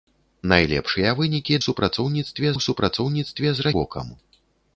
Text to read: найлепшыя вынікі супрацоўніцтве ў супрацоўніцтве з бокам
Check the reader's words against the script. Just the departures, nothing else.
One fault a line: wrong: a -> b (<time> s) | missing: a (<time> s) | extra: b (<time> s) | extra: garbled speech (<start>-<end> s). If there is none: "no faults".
no faults